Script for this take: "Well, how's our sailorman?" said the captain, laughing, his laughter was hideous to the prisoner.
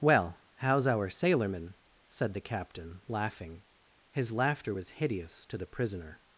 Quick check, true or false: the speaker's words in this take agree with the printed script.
true